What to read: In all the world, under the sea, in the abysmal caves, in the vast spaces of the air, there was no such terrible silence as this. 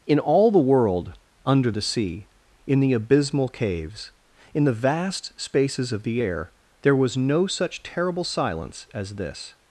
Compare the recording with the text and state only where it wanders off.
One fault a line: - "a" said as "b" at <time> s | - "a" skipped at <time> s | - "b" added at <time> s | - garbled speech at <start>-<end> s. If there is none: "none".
none